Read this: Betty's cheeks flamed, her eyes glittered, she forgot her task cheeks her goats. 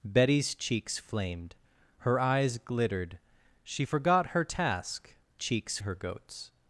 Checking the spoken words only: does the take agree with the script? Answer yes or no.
yes